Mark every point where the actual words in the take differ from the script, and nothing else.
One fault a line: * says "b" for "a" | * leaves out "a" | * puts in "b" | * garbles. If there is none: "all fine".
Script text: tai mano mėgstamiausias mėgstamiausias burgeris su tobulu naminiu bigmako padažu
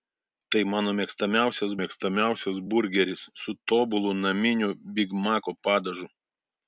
all fine